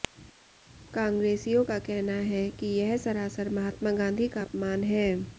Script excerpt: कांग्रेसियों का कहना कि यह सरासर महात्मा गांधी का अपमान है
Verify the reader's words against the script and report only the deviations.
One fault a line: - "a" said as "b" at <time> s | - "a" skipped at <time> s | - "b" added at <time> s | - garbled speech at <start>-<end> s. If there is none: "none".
- "है" added at 2.3 s